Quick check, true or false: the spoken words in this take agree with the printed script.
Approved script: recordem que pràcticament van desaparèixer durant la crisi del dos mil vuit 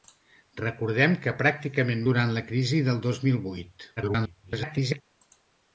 false